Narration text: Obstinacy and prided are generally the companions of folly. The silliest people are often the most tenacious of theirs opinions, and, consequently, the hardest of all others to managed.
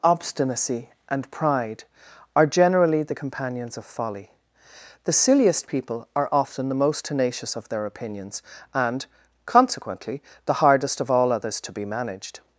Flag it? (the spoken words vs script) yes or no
yes